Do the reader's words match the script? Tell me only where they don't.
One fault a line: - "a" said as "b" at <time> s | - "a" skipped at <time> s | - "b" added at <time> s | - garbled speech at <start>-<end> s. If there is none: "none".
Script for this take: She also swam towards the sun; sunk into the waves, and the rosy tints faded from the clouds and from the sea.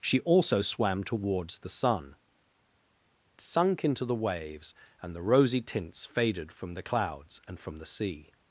none